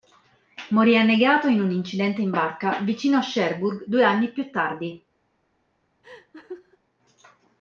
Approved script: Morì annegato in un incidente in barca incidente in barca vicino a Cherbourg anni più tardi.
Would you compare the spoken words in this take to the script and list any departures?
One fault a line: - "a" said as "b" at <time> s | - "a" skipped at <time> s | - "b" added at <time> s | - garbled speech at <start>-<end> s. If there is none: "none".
- "incidente in barca" skipped at 2.8 s
- "due" added at 3.8 s